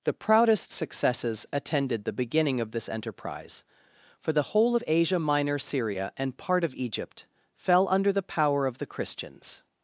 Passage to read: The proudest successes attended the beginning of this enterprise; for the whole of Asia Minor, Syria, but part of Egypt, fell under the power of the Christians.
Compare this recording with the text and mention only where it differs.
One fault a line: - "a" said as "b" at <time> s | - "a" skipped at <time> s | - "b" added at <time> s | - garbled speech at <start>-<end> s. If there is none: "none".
- "but" said as "and" at 6.2 s